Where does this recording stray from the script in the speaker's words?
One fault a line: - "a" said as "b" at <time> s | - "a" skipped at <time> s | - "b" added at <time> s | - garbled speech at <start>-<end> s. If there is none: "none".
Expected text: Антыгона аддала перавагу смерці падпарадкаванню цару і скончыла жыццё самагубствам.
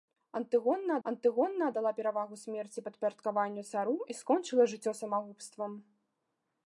- "антыгона" added at 1.1 s